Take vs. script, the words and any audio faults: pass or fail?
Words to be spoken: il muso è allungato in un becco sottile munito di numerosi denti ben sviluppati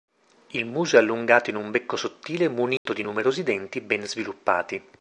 fail